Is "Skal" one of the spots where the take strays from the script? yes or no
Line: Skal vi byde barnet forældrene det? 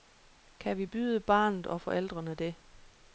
yes